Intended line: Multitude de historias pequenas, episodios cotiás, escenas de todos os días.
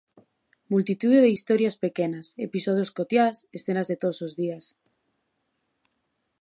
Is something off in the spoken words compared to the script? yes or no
no